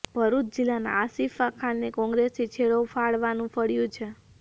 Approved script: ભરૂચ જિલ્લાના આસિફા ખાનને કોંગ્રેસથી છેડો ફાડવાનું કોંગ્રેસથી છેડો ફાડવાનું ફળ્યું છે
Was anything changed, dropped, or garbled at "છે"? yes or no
no